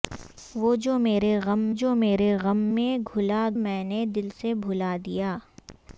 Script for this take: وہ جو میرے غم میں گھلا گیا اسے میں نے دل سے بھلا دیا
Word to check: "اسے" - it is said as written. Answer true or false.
false